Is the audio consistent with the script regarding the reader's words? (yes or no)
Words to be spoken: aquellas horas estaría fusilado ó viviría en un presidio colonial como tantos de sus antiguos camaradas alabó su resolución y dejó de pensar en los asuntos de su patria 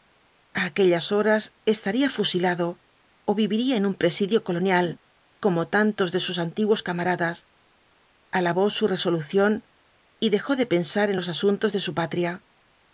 yes